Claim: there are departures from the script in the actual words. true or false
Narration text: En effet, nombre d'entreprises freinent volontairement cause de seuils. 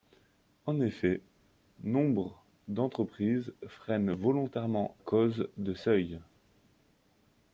false